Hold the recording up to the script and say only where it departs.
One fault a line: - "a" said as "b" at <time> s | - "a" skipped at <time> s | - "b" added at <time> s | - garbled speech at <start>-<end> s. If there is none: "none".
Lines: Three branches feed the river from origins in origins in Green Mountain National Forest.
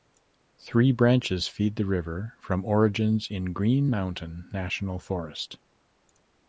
- "origins in" skipped at 3.5 s